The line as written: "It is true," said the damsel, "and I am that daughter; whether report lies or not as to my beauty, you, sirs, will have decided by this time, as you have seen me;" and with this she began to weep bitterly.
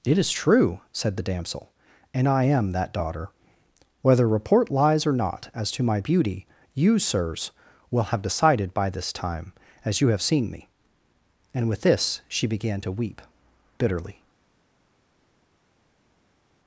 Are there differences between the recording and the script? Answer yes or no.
no